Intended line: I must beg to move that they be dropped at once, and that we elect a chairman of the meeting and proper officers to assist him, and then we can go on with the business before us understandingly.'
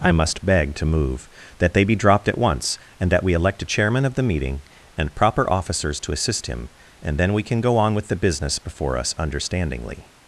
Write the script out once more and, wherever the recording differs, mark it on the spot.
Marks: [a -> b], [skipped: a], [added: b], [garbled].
I must beg to move that they be dropped at once, and that we elect a chairman of the meeting and proper officers to assist him, and then we can go on with the business before us understandingly.'